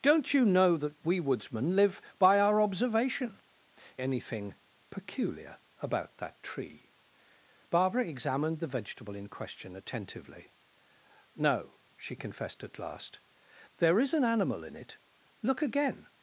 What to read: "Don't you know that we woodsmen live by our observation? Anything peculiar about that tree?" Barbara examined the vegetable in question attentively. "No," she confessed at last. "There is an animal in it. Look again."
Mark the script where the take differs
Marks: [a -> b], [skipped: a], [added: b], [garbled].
"Don't you know that we woodsmen live by our observation? Anything peculiar about that tree?" Barbara examined the vegetable in question attentively. "No," she confessed at last. "There is an animal in it. Look again."